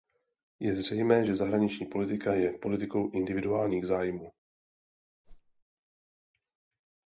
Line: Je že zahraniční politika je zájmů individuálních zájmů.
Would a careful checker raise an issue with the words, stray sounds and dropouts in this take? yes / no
yes